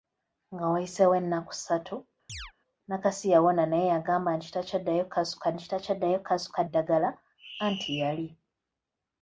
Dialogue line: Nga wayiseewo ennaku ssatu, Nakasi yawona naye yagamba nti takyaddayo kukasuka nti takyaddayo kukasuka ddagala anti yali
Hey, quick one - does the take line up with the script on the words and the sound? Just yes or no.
no